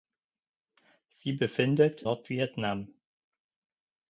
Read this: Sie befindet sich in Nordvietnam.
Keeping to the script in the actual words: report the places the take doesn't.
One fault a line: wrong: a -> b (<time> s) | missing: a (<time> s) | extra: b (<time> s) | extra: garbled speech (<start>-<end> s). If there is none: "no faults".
missing: sich in (2.0 s)